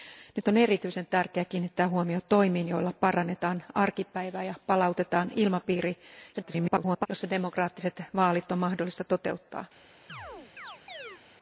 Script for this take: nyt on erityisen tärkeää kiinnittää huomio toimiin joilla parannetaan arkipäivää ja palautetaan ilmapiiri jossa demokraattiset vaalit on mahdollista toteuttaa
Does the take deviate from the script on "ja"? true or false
false